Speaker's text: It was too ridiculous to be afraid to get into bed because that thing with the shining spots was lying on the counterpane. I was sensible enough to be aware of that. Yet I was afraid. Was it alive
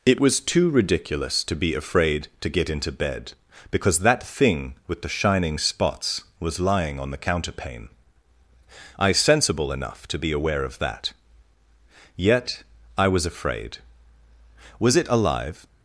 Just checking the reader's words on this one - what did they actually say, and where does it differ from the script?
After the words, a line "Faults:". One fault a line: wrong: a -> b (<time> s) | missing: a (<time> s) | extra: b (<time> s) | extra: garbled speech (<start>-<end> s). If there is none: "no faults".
It was too ridiculous to be afraid to get into bed because that thing with the shining spots was lying on the counterpane. I sensible enough to be aware of that. Yet I was afraid. Was it alive
Faults:
missing: was (9.1 s)